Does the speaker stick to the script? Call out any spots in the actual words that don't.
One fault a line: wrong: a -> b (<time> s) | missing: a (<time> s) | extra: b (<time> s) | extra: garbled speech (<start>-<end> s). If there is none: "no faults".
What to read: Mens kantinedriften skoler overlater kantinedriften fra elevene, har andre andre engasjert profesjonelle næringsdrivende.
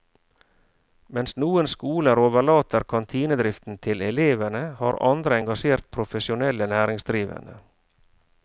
wrong: kantinedriften -> noen (1.4 s)
wrong: fra -> til (3.9 s)
missing: andre (5.4 s)